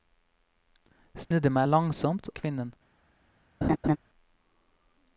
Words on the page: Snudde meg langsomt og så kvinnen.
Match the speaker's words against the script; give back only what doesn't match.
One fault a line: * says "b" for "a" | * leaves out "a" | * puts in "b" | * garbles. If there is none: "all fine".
* leaves out "og så"